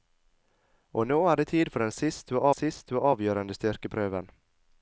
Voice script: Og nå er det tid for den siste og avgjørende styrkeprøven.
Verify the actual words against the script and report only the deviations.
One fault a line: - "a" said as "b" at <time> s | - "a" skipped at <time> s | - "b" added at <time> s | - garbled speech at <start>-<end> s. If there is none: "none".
- "siste og" added at 2.5 s